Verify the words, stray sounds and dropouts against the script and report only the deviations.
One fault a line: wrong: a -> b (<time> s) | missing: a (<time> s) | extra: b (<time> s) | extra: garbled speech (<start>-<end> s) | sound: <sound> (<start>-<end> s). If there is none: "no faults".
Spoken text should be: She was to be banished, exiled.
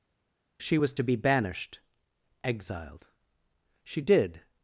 extra: She did (3.8 s)